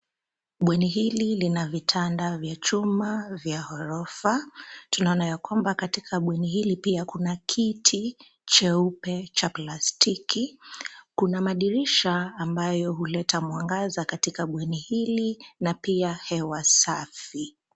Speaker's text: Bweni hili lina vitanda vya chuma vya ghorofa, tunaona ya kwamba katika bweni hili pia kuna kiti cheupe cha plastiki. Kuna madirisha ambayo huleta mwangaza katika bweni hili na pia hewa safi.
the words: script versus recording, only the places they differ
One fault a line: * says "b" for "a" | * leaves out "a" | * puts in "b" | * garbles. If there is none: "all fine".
all fine